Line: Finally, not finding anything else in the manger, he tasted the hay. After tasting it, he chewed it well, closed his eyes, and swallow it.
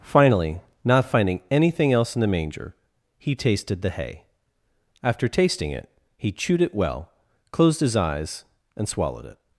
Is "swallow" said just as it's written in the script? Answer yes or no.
no